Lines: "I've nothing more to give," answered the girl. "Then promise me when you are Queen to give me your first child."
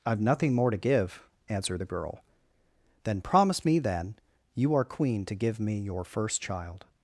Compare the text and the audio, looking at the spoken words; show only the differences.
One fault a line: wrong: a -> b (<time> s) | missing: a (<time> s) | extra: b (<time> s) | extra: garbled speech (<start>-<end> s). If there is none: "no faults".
wrong: when -> then (3.8 s)